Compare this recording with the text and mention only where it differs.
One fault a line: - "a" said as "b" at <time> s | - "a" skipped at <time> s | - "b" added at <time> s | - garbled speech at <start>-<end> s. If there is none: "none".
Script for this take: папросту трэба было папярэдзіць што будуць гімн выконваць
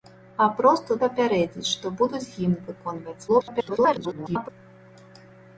- "трэба было" skipped at 1.0 s
- garbled speech at 3.3-4.5 s